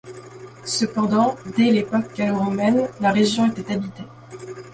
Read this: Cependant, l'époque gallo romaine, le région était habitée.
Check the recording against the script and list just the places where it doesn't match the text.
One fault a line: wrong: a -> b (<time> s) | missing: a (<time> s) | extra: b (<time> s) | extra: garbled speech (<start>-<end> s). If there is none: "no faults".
extra: dès (1.6 s)
wrong: le -> la (3.0 s)